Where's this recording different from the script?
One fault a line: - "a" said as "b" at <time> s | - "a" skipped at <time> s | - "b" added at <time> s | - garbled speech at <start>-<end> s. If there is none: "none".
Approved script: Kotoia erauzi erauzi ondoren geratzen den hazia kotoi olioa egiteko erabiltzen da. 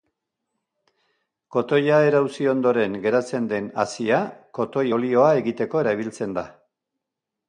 - "erauzi" skipped at 2.5 s